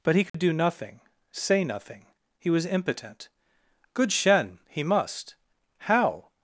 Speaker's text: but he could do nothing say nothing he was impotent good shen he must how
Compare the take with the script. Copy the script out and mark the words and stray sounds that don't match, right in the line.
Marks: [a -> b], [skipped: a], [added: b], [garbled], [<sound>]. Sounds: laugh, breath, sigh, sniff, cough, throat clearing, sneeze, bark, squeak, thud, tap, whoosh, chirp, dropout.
but he could [dropout] do nothing say nothing he was impotent good shen he must how